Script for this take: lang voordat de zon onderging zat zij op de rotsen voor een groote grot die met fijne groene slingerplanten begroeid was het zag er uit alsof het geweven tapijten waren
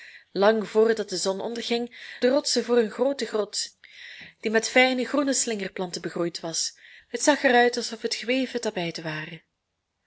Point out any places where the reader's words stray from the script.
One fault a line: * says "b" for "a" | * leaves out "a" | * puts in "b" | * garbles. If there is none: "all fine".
* leaves out "zat zij op"